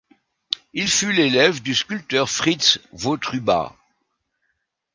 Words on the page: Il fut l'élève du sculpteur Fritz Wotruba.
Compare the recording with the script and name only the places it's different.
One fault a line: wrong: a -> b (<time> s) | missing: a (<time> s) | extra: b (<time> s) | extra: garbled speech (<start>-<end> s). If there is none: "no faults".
no faults